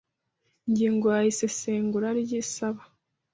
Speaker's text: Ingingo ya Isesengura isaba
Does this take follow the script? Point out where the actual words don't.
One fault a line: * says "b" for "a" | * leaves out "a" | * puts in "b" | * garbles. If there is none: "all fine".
* puts in "ry"